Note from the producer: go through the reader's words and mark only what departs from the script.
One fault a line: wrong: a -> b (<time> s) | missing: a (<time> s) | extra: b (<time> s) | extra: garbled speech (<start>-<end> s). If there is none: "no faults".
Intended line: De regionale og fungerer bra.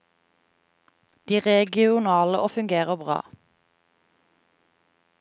no faults